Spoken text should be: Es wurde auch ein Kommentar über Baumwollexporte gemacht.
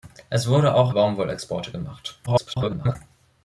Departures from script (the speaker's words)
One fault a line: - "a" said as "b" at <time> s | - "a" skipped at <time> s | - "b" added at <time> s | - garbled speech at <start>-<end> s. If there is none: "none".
- "ein Kommentar über" skipped at 0.9 s
- garbled speech at 2.3-3.0 s